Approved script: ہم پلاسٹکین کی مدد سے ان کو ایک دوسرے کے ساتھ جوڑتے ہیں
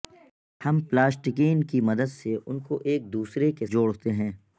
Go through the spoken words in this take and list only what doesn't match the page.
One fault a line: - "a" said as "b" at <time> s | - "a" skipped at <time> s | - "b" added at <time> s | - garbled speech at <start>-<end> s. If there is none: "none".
- "ساتھ" skipped at 3.6 s